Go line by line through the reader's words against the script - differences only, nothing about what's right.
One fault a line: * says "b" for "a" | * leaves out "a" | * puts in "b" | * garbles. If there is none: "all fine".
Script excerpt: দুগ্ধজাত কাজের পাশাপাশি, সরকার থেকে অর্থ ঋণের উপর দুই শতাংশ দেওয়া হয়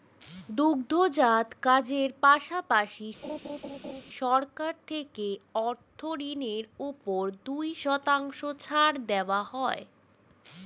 * puts in "ছাড়"